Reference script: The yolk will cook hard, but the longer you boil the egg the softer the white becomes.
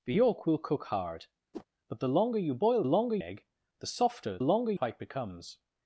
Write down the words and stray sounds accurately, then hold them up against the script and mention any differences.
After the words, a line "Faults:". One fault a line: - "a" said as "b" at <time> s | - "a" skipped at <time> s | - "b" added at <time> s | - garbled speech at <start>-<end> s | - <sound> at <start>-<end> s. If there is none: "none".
The yolk will cook hard, but the longer you boil longer egg the softer longer white becomes.
Faults:
- whoosh at 1.5-1.7 s
- "the" said as "longer" at 2.9 s
- "the" said as "longer" at 4.4 s